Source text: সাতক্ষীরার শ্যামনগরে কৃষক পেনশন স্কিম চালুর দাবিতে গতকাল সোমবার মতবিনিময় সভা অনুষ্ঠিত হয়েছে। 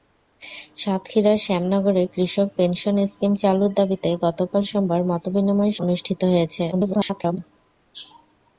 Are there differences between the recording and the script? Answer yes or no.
yes